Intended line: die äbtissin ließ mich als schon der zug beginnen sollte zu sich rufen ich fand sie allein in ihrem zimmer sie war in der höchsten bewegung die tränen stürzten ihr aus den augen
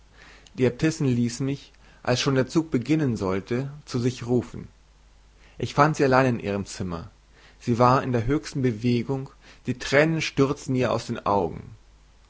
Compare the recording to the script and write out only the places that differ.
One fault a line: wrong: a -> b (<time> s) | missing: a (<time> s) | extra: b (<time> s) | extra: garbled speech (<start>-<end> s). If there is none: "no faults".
no faults